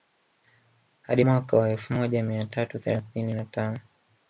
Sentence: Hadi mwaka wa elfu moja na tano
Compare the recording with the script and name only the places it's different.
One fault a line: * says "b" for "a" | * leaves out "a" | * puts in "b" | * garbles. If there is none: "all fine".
* puts in "mia tatu thelathini"